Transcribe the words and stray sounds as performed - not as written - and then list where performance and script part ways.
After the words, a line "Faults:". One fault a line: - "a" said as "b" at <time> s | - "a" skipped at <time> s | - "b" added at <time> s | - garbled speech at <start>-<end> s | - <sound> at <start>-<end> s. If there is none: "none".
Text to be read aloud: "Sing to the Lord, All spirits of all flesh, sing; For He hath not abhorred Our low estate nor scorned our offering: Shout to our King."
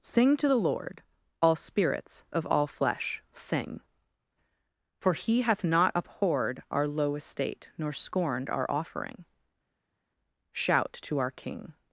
"Sing to the Lord, All spirits of all flesh, sing; For He hath not abhorred Our low estate nor scorned our offering: Shout to our King."
Faults:
none